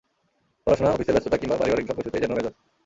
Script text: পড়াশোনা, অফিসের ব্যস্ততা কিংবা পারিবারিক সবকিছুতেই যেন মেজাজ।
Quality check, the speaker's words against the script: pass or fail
pass